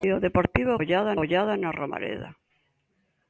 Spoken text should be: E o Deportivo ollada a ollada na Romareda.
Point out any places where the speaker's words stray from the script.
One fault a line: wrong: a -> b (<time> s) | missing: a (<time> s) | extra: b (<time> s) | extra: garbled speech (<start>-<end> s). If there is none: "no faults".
no faults